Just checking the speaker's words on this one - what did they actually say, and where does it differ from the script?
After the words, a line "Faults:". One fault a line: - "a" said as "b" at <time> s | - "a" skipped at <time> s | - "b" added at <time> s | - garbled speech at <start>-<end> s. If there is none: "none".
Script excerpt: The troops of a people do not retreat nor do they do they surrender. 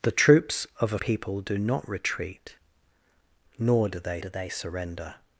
The troops of a people do not retreat nor do they do they surrender.
Faults:
none